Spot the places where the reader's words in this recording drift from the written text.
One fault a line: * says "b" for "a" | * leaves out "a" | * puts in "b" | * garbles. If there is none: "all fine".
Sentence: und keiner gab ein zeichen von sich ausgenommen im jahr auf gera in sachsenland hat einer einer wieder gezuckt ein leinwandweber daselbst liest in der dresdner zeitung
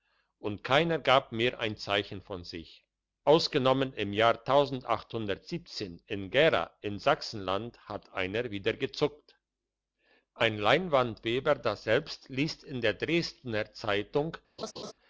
* puts in "mehr"
* says "in" for "auf"
* leaves out "einer"